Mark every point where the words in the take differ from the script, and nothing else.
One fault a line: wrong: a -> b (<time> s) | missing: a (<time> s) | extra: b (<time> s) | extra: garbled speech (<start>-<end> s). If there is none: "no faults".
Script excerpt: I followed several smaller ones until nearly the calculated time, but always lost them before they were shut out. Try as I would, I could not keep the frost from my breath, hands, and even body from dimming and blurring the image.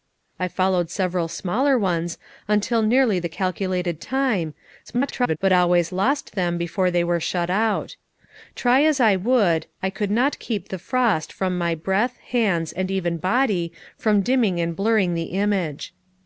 extra: garbled speech (4.9-5.4 s)